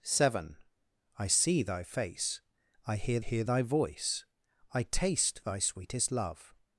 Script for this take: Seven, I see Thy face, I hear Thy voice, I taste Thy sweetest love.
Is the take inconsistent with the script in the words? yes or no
yes